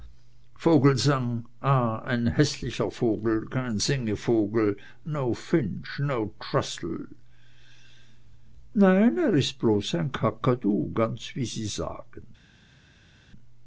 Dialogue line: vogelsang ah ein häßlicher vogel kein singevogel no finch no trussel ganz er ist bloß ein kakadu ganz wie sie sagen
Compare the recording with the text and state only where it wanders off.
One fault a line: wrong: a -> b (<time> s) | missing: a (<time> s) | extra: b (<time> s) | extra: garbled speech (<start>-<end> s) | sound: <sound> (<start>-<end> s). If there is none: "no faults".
wrong: ganz -> nein (8.7 s)